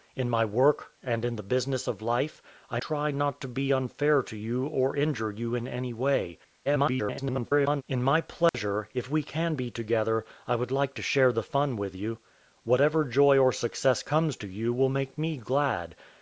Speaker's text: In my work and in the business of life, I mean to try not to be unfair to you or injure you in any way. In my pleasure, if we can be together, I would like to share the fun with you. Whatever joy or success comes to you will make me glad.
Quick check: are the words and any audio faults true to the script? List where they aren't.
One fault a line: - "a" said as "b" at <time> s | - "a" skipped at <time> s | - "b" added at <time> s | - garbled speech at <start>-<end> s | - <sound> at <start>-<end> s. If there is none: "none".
- "mean to" skipped at 2.8 s
- garbled speech at 6.6-7.8 s
- dropout at 8.5-8.5 s